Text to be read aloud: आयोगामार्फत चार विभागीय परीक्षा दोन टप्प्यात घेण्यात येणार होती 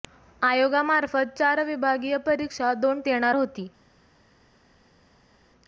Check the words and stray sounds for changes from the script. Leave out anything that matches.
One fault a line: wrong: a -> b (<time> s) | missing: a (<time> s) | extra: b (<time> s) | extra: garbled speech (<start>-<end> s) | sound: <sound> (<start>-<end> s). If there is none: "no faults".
missing: टप्प्यात घेण्यात (3.0 s)